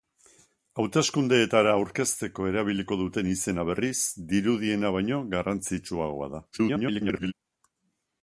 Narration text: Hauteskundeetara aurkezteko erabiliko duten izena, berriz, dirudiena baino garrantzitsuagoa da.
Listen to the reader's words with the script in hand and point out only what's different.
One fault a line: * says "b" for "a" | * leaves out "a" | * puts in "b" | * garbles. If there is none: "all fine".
* garbles